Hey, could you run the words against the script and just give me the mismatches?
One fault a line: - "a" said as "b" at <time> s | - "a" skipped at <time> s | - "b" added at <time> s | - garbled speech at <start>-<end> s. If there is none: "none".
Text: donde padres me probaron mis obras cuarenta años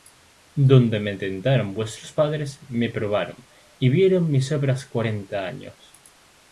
- "me tentaron vuestros" added at 1.0 s
- "y vieron" added at 3.8 s